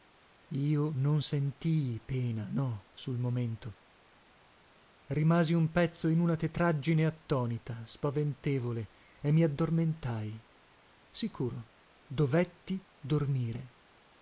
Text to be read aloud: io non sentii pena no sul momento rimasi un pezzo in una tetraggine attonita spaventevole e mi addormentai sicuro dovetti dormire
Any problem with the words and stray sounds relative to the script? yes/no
no